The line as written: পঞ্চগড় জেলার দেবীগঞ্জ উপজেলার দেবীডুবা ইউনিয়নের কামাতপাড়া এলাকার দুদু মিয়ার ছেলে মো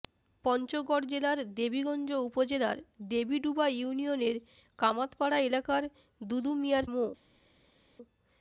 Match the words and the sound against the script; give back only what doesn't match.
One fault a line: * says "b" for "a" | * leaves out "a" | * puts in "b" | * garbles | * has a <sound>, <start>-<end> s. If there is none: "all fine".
* leaves out "ছেলে"